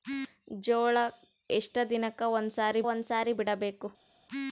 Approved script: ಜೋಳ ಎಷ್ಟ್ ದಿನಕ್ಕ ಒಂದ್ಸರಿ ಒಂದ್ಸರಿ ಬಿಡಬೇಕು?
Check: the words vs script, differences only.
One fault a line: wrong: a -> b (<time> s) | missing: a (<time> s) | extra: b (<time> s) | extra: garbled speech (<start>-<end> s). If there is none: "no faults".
no faults